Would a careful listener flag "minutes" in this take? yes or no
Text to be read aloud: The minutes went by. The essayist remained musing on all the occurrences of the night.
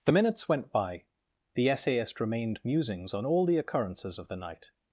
no